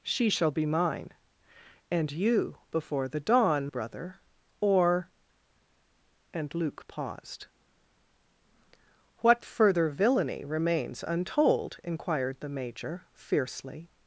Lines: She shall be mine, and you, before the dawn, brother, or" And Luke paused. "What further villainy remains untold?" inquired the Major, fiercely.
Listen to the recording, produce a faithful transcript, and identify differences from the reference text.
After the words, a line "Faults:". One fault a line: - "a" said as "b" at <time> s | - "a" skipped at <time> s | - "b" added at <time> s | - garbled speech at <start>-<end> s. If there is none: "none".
She shall be mine, and you, before the dawn, brother, or" And Luke paused. "What further villainy remains untold?" inquired the Major, fiercely.
Faults:
none